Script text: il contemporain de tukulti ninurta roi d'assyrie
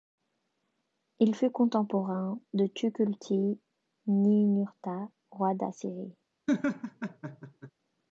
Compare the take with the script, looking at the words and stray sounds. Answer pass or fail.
fail